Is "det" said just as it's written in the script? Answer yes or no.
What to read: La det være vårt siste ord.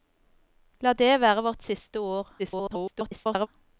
yes